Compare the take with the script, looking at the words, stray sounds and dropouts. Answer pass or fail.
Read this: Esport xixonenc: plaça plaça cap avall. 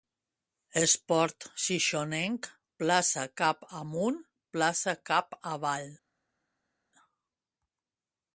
fail